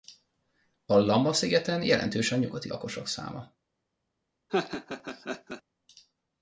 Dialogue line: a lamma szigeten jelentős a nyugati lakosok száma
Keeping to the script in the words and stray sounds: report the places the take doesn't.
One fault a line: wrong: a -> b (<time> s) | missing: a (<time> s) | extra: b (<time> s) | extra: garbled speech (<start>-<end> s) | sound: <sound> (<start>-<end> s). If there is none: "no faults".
sound: laugh (4.5-5.6 s)